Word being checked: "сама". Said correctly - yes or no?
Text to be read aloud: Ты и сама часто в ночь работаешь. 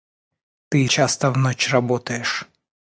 no